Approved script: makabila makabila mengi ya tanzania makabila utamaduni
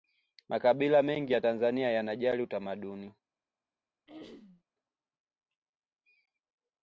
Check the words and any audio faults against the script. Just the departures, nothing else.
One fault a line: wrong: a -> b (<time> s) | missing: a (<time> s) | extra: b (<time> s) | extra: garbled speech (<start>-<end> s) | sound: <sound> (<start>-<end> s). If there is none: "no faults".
missing: makabila (1.0 s)
wrong: makabila -> yanajali (1.9 s)
sound: throat clearing (4.1-4.6 s)